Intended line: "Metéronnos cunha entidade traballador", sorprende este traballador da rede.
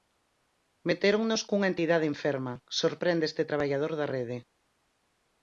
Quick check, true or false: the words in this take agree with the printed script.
false